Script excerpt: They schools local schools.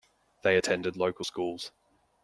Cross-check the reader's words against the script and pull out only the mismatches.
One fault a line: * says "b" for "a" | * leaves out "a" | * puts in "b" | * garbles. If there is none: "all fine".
* says "attended" for "schools"